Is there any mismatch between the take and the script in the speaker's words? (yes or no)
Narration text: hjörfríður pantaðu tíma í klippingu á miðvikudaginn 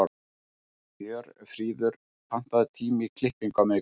no